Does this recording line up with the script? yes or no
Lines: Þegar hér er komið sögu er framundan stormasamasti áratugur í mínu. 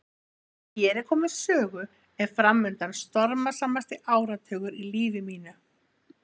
no